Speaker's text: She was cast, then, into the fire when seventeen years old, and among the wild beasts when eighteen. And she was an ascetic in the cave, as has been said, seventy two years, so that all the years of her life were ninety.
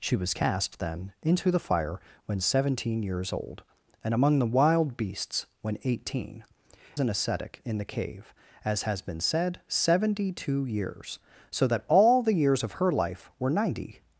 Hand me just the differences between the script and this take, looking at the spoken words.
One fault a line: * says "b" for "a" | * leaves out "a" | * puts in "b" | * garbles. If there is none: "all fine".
* leaves out "And she was"